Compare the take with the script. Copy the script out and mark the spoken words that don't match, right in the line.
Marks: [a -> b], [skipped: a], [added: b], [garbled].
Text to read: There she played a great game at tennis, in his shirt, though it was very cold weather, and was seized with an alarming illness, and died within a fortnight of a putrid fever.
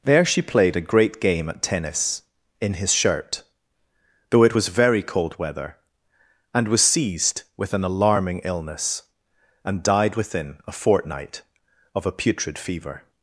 There she played a great game at tennis, in his shirt, though it was very cold weather, and was seized with an alarming illness, and died within a fortnight of a putrid fever.